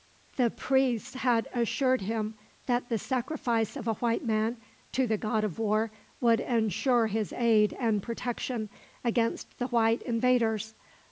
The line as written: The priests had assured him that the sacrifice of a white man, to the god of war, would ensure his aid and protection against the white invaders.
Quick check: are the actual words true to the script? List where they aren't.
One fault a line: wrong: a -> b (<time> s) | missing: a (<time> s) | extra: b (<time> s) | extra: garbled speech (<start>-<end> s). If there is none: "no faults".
no faults